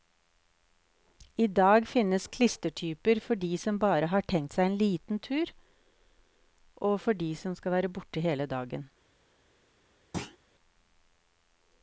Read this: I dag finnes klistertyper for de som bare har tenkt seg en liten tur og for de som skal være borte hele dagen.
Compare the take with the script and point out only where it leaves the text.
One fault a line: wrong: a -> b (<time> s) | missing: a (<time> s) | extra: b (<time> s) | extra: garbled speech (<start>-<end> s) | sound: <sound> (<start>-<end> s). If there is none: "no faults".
sound: thud (10.1-10.4 s)